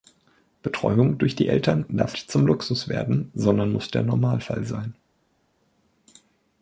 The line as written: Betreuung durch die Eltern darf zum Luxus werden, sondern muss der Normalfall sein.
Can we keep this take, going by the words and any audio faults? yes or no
yes